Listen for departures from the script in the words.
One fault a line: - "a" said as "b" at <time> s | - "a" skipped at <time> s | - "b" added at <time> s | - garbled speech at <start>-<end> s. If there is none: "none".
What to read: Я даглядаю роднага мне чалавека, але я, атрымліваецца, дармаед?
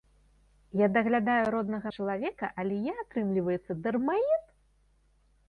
- "мне" skipped at 1.9 s